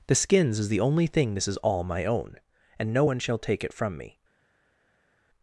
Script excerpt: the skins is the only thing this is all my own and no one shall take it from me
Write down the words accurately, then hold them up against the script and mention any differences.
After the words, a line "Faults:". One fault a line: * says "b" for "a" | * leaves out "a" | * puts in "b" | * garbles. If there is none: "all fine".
the skins is the only thing this is all my own and no one shall take it from me
Faults:
all fine